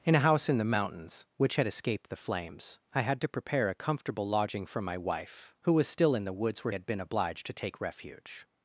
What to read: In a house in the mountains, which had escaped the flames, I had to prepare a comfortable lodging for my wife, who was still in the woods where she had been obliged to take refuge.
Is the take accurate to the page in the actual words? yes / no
no